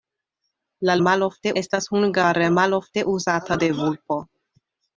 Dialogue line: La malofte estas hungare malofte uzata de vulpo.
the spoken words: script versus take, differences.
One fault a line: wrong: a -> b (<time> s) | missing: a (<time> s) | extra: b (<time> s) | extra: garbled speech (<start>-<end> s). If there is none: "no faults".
no faults